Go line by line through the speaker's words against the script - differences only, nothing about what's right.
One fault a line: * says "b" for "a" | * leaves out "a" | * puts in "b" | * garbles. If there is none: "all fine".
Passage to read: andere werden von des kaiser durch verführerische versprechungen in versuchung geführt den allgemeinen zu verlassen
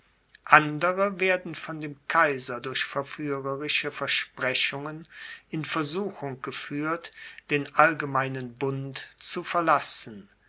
* says "dem" for "des"
* puts in "bund"